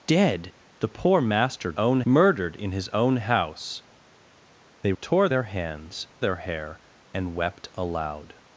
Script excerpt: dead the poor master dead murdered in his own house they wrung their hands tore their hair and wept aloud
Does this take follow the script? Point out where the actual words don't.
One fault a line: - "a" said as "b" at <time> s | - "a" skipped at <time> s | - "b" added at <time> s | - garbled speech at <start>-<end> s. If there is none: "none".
- "dead" said as "own" at 1.7 s
- "wrung" said as "tore" at 5.0 s
- "tore" skipped at 6.1 s